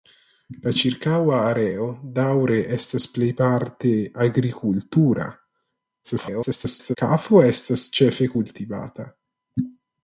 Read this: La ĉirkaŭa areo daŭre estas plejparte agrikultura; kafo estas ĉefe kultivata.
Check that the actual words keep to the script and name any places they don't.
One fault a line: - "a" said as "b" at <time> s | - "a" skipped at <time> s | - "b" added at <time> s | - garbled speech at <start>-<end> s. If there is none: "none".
- garbled speech at 6.0-7.0 s